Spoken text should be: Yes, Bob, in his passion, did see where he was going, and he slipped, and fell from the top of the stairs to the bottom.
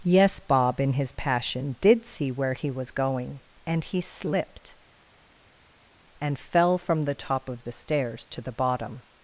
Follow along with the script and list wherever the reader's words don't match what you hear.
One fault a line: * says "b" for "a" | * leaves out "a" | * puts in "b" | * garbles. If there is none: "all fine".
all fine